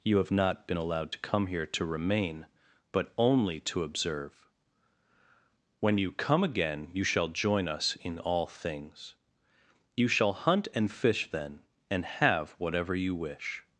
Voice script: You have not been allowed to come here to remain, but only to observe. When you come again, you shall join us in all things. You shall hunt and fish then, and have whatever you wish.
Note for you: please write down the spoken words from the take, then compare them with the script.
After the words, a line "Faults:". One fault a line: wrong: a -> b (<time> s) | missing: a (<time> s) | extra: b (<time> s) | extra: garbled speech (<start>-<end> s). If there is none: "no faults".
You have not been allowed to come here to remain, but only to observe. When you come again, you shall join us in all things. You shall hunt and fish then, and have whatever you wish.
Faults:
no faults